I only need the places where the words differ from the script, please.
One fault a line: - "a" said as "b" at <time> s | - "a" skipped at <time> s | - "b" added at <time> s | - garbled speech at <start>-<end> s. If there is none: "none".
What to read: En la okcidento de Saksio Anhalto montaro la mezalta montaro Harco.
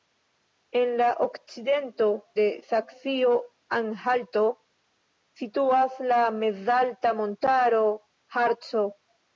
- "montaro" said as "situas" at 5.4 s